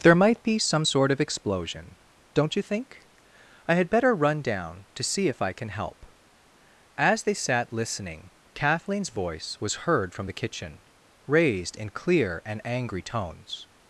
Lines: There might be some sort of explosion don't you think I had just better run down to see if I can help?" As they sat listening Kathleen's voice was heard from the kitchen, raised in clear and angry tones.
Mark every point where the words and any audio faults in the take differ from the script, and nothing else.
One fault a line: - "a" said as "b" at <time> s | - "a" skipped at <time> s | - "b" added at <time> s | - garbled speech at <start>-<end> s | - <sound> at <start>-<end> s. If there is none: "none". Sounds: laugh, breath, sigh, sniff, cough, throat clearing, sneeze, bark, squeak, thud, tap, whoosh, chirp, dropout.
- "just" skipped at 3.9 s